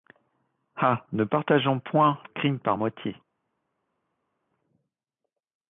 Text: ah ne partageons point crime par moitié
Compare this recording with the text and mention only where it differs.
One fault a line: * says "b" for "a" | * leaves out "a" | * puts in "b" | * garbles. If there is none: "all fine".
all fine